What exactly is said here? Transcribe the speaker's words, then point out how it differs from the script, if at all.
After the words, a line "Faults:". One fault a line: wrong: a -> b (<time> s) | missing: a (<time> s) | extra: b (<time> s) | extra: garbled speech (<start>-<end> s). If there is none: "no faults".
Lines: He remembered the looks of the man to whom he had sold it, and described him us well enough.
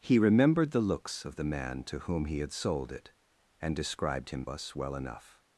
He remembered the looks of the man to whom he had sold it, and described him us well enough.
Faults:
no faults